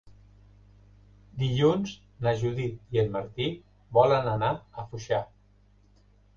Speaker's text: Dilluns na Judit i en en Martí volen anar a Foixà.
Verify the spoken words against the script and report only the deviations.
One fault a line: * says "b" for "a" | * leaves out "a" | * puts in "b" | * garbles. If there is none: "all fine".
* leaves out "en"